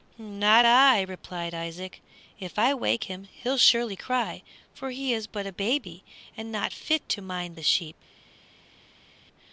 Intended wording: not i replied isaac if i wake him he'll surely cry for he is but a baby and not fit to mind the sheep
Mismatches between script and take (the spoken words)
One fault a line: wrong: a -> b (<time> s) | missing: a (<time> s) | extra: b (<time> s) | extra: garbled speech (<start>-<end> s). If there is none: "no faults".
no faults